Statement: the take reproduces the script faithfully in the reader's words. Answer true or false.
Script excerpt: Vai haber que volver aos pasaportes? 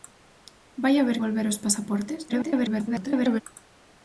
false